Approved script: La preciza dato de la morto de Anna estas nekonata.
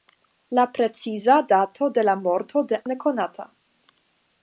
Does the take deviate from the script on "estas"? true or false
true